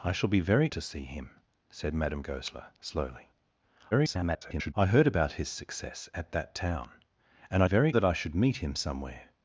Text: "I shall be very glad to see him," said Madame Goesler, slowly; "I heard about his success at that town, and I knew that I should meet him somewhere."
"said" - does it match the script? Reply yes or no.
yes